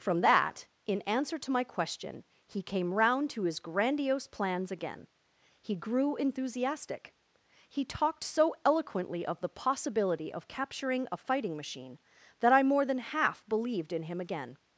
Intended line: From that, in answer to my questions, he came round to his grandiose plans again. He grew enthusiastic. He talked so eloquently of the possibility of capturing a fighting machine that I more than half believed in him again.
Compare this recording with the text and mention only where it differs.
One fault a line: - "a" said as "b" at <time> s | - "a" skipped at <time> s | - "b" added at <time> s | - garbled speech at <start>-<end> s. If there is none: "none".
- "questions" said as "question" at 1.6 s